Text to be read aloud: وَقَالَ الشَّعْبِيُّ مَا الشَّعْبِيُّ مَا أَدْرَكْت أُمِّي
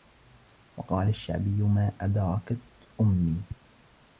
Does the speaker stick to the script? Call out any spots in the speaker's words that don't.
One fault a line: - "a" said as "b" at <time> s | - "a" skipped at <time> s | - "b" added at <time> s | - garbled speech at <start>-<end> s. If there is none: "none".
- "الشَّعْبِيُّ مَا" skipped at 1.9 s